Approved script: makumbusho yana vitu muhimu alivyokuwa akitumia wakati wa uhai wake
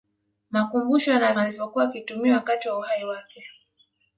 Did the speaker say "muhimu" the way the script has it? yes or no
no